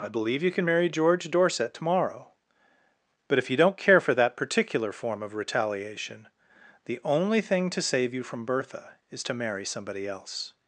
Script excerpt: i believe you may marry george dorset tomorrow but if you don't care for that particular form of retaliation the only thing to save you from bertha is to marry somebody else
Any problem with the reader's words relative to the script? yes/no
yes